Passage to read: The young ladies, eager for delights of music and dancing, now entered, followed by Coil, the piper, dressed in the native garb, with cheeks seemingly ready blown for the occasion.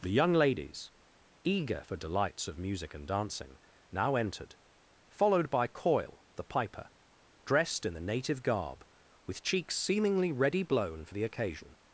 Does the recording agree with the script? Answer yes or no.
yes